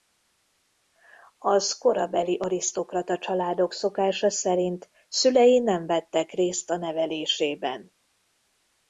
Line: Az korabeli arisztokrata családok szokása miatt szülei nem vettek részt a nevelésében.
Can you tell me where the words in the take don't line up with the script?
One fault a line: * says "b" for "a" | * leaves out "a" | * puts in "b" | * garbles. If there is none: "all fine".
* says "szerint" for "miatt"